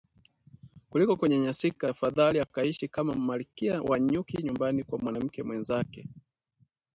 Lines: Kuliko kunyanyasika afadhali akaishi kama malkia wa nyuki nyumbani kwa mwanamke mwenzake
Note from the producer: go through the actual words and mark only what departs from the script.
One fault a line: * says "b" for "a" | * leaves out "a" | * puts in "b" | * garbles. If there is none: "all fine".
all fine